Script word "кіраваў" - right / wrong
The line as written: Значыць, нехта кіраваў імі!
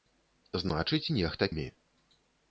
wrong